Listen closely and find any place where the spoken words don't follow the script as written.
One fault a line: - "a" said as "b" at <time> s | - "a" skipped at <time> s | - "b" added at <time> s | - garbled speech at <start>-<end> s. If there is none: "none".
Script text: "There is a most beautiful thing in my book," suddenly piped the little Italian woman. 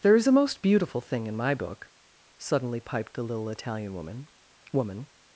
- "woman" added at 4.7 s